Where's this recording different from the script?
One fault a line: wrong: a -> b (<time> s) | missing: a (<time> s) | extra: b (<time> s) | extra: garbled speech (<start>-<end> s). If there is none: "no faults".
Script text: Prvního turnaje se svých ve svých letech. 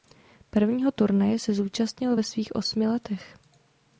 wrong: svých -> zúčastnil (1.5 s)
extra: osmi (2.5 s)